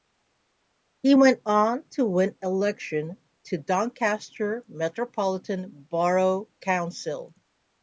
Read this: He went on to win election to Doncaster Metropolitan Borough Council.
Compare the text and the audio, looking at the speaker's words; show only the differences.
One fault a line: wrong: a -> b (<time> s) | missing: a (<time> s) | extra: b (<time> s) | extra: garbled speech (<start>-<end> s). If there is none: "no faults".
no faults